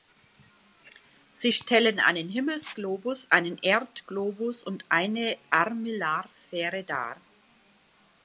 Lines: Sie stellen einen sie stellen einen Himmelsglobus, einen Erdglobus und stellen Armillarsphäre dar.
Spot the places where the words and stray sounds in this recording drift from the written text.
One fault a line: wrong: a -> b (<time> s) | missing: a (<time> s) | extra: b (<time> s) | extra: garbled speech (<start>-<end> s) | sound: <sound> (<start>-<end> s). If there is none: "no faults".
missing: sie stellen einen (2.3 s)
wrong: stellen -> eine (4.9 s)